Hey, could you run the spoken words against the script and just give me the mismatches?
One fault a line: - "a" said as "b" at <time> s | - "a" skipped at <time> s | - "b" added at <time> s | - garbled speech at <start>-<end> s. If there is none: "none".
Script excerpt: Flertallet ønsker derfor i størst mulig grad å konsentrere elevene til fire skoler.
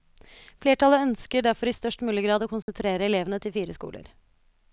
none